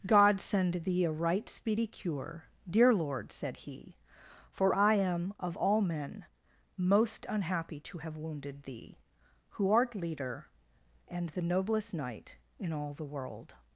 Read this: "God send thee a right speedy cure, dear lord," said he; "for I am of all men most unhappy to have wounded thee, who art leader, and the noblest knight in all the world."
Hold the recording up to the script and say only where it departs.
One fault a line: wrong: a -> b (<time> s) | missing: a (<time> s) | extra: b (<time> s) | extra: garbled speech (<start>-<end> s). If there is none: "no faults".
no faults